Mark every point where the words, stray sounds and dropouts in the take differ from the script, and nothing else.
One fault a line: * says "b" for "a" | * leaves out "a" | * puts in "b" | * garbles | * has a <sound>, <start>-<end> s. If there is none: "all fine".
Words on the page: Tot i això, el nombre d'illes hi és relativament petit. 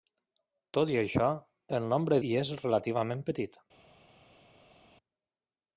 * leaves out "d'illes"